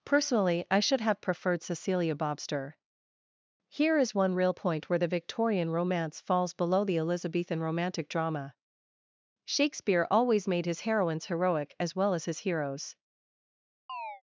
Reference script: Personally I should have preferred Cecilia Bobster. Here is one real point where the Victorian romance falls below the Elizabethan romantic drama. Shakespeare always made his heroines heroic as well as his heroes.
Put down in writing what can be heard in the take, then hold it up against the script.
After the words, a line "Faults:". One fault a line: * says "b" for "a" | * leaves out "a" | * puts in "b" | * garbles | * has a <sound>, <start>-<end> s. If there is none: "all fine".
Personally I should have preferred Cecilia Bobster. Here is one real point where the Victorian romance falls below the Elizabethan romantic drama. Shakespeare always made his heroines heroic as well as his heroes.
Faults:
* has a chirp, 13.9-14.2 s